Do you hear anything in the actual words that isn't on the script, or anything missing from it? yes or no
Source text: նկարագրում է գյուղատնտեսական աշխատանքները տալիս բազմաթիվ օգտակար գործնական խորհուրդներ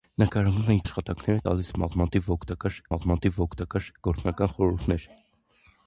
yes